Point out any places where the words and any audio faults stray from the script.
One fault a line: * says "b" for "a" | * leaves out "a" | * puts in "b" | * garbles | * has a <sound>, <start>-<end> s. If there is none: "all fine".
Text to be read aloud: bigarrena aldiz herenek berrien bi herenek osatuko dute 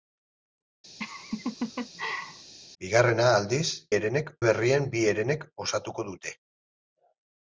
* has a laugh, 1.0-2.5 s